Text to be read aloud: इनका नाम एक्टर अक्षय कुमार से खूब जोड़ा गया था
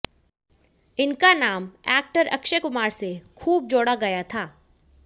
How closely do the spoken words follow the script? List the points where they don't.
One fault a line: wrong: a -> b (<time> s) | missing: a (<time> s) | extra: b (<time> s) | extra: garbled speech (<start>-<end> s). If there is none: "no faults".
no faults